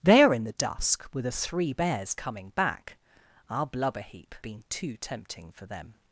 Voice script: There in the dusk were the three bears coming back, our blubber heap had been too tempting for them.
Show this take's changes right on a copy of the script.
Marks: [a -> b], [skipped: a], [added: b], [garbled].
There in the dusk were the three bears coming back, our blubber heap [skipped: had] been too tempting for them.